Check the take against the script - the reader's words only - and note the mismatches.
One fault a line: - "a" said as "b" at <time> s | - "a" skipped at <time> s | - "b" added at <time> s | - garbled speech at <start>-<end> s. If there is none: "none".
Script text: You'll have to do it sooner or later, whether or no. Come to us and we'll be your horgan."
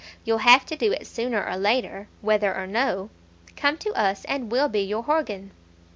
none